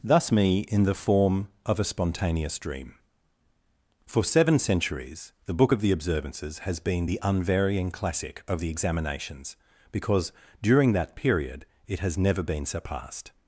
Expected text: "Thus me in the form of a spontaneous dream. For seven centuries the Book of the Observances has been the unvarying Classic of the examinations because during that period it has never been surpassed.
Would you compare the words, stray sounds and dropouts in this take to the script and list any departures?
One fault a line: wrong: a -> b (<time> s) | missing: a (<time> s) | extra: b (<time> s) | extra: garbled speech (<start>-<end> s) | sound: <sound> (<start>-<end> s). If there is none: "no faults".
no faults